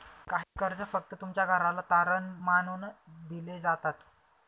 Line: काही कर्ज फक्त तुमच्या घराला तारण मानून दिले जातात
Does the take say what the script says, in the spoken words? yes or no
yes